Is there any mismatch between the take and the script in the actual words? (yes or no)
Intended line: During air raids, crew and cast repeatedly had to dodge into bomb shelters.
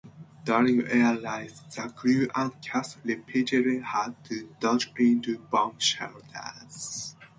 yes